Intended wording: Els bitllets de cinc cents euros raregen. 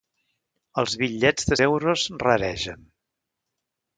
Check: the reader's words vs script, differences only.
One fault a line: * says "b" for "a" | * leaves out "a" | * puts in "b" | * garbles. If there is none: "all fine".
* leaves out "cinc cents"